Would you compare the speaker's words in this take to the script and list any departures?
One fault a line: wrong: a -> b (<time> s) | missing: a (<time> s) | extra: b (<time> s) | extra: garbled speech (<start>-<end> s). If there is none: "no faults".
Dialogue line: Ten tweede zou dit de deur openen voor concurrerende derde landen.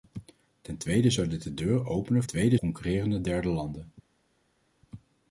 wrong: voor -> tweede (2.2 s)